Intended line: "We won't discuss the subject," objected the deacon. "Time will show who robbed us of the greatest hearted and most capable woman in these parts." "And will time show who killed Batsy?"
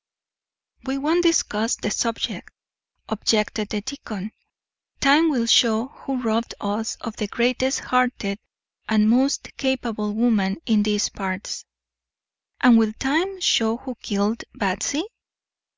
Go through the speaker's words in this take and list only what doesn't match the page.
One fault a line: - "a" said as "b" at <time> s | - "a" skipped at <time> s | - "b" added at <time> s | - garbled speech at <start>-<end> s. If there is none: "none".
none